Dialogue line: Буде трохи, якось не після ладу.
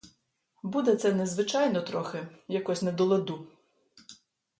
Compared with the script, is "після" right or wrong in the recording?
wrong